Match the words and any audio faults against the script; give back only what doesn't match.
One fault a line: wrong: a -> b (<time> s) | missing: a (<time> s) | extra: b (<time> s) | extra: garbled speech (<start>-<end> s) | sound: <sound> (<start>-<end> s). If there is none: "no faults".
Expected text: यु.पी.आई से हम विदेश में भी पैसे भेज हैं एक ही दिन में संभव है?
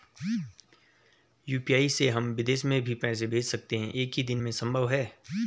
extra: सकते (3.4 s)